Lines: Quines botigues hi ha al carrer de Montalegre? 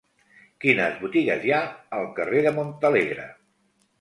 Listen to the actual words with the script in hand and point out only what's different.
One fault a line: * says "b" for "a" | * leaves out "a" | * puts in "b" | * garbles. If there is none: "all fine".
all fine